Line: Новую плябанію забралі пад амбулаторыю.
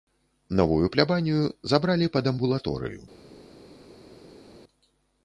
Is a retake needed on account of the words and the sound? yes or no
no